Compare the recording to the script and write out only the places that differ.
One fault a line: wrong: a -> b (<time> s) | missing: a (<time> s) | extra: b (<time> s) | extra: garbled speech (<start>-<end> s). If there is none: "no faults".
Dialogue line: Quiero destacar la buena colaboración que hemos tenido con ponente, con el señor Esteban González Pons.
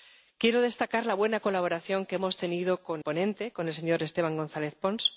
no faults